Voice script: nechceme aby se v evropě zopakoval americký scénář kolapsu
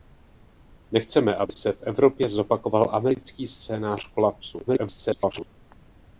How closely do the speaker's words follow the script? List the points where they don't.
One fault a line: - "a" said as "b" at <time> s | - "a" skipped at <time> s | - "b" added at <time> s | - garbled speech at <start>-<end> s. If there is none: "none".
- garbled speech at 4.7-5.5 s